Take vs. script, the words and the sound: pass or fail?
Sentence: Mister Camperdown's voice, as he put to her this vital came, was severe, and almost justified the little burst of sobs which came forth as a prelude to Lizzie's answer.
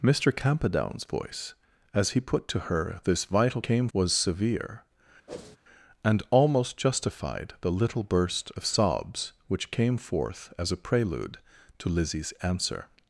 fail